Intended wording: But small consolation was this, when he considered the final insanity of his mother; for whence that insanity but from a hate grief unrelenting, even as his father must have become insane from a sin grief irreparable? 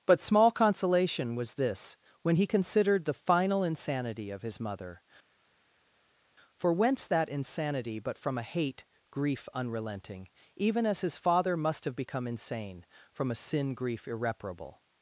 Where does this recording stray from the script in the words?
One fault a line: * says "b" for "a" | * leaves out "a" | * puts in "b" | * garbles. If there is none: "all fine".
all fine